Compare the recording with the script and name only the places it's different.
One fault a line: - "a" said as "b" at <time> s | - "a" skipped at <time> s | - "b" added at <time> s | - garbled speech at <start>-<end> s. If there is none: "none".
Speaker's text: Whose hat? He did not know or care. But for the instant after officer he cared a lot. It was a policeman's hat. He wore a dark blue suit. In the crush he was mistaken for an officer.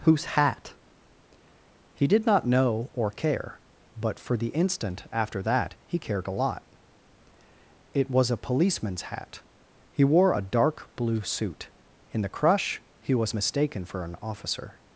- "officer" said as "that" at 5.4 s